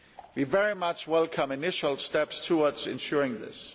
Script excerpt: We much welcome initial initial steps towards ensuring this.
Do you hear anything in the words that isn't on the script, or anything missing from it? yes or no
yes